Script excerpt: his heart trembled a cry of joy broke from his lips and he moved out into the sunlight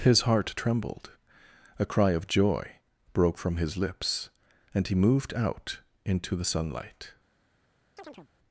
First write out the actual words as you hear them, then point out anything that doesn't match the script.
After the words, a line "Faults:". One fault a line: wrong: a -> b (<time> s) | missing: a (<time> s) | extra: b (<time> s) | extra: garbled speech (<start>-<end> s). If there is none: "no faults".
his heart trembled a cry of joy broke from his lips and he moved out into the sunlight
Faults:
no faults